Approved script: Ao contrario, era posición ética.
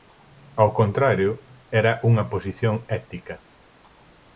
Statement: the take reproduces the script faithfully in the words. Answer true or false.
false